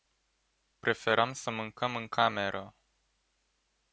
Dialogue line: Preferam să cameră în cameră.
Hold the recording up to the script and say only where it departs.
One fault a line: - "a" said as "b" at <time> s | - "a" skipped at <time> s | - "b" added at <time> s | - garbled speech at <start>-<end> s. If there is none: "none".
- "cameră" said as "mâncăm" at 1.5 s